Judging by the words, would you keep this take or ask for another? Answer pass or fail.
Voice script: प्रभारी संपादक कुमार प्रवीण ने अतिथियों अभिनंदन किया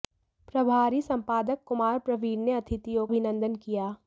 pass